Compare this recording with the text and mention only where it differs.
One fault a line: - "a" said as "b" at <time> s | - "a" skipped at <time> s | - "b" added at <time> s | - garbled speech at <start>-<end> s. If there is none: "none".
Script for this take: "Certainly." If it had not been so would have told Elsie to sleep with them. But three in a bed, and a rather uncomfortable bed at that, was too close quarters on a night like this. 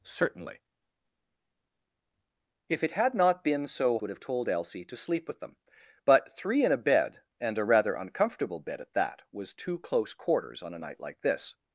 none